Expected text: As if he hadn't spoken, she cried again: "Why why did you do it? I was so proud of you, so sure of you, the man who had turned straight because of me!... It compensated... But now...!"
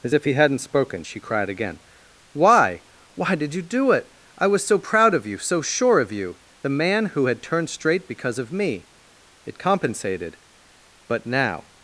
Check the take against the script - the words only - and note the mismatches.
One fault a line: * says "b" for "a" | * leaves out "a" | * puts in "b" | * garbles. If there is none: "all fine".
all fine